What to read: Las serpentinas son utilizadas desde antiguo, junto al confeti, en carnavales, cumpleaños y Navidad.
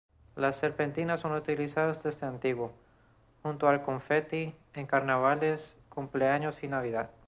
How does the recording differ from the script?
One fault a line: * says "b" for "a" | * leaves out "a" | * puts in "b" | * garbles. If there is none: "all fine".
all fine